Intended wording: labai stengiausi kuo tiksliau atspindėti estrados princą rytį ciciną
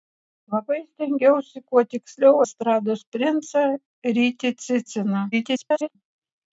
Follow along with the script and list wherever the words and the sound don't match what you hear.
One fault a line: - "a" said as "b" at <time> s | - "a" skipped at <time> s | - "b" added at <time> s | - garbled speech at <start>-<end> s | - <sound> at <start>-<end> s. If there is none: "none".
- "atspindėti" skipped at 2.4 s
- garbled speech at 5.3-6.0 s